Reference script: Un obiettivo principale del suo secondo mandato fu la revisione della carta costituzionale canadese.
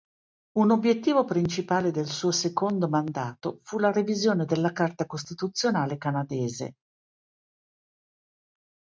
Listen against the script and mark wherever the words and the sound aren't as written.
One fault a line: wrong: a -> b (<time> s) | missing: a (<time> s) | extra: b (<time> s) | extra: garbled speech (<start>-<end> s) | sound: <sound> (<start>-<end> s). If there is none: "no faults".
no faults